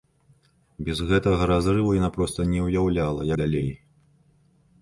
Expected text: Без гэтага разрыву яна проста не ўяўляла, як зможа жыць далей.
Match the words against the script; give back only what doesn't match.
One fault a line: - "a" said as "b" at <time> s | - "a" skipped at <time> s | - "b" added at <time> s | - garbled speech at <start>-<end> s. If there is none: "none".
- "як зможа жыць" skipped at 3.3 s